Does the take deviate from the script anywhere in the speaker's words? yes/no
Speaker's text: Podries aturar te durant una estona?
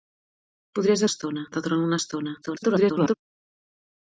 yes